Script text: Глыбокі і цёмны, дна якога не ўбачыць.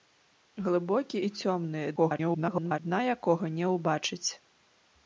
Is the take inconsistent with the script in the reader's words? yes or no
yes